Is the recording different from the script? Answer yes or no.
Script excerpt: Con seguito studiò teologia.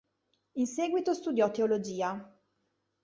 yes